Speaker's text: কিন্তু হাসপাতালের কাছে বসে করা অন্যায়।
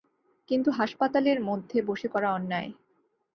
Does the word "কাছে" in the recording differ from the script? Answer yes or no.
yes